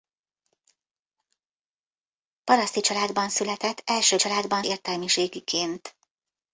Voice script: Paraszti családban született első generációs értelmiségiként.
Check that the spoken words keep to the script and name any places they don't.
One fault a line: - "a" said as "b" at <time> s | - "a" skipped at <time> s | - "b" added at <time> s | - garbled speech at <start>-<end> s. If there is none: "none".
- "generációs" said as "családban" at 4.2 s